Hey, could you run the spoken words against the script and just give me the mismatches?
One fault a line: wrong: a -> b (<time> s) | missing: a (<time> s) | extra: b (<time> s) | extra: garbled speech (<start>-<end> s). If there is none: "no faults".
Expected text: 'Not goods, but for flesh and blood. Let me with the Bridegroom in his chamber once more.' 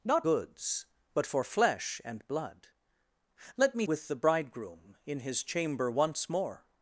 no faults